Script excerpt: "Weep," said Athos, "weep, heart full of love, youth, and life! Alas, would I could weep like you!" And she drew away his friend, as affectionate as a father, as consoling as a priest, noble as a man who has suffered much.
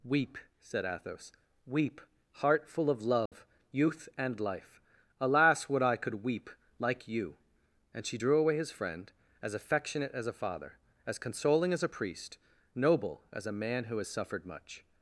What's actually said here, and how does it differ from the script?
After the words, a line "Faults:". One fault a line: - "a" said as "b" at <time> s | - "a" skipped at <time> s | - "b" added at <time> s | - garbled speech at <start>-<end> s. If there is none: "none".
"Weep," said Athos, "weep, heart full of love, youth, and life! Alas, would I could weep like you!" And she drew away his friend, as affectionate as a father, as consoling as a priest, noble as a man who has suffered much.
Faults:
none